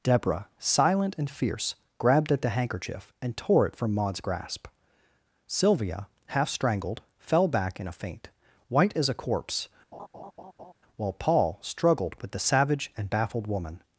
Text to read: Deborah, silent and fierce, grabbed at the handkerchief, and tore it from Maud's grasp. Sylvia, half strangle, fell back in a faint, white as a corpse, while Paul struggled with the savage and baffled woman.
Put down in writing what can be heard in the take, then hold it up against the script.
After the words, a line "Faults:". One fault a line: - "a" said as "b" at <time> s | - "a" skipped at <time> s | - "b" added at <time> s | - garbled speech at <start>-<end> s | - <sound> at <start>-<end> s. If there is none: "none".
Deborah, silent and fierce, grabbed at the handkerchief, and tore it from Maud's grasp. Sylvia, half strangled, fell back in a faint, white as a corpse, while Paul struggled with the savage and baffled woman.
Faults:
- "strangle" said as "strangled" at 6.5 s
- laugh at 9.9-10.7 s